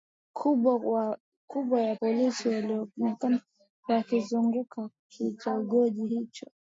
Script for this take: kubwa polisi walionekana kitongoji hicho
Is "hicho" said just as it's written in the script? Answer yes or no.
yes